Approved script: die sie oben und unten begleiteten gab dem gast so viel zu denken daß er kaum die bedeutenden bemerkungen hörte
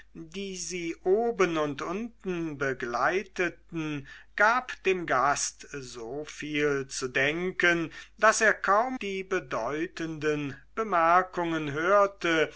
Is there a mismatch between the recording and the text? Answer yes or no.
no